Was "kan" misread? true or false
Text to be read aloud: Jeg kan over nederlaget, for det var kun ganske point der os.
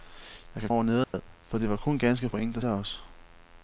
false